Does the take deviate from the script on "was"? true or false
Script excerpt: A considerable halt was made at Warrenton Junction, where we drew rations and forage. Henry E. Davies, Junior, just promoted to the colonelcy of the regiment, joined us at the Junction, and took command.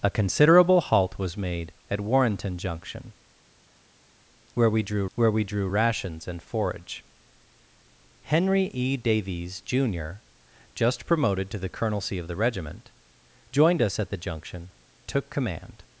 false